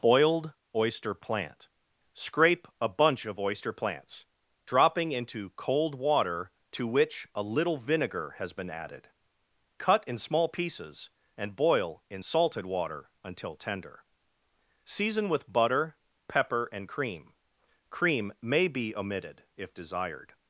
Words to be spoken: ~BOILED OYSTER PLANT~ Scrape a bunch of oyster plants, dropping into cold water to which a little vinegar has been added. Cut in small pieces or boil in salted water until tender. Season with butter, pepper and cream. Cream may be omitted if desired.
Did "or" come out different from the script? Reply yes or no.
yes